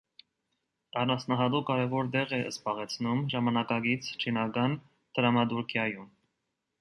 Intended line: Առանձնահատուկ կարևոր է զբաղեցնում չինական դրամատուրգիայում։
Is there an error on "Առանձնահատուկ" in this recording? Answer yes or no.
no